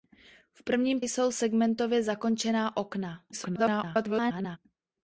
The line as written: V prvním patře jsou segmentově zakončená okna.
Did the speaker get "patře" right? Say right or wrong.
wrong